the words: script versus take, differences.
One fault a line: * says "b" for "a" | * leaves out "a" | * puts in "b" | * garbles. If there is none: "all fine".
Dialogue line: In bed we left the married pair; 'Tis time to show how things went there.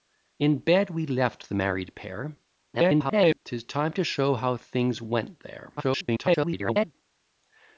* garbles
* garbles